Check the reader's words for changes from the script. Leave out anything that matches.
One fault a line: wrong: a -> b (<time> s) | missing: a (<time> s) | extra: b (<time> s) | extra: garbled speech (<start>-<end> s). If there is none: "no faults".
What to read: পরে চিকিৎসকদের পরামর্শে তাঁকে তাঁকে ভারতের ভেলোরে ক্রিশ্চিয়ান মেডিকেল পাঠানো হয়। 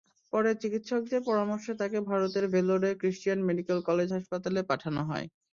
missing: তাঁকে (2.0 s)
extra: কলেজ হাসপাতালে (3.9 s)